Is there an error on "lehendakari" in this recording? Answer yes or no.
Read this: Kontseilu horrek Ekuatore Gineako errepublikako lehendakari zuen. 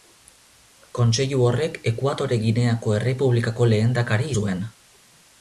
no